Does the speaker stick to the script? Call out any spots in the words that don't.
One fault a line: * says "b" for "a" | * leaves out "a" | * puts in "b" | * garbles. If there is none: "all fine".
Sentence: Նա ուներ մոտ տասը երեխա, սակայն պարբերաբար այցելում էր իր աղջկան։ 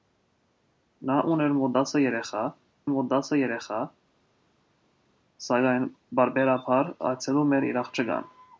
* puts in "մոտ տասը երեխա"